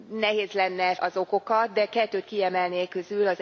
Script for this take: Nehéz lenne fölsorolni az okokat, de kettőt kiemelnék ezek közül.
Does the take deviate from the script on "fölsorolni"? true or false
true